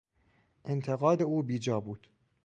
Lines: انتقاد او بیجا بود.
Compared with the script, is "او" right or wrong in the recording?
right